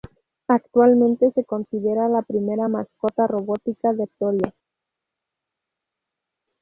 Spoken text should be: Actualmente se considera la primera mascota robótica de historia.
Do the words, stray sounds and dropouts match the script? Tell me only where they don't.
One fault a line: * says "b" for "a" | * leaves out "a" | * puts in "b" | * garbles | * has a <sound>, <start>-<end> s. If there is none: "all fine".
all fine